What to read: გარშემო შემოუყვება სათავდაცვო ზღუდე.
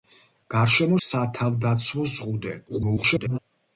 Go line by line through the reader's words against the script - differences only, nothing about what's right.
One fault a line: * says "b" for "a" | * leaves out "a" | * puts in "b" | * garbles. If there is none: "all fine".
* leaves out "შემოუყვება"
* garbles